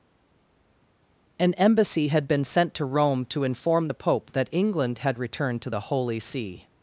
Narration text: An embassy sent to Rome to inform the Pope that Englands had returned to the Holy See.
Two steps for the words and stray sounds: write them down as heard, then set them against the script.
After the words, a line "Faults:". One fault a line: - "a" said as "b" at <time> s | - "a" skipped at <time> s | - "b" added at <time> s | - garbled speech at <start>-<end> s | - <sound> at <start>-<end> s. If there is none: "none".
An embassy had been sent to Rome to inform the Pope that England had returned to the Holy See.
Faults:
- "had been" added at 2.1 s
- "Englands" said as "England" at 4.5 s